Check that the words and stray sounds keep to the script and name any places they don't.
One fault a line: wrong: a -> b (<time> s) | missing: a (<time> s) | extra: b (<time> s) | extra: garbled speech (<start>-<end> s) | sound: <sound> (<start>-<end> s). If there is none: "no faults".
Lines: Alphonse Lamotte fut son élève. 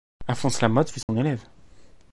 sound: dropout (1.0-1.1 s)